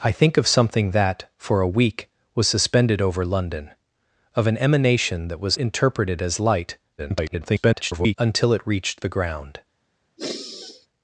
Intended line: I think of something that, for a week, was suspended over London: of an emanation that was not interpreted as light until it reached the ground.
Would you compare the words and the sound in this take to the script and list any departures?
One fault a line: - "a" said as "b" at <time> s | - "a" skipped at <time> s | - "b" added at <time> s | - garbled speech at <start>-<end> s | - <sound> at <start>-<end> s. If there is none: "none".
- "not" skipped at 5.6 s
- garbled speech at 7.0-8.2 s
- sigh at 10.2-10.9 s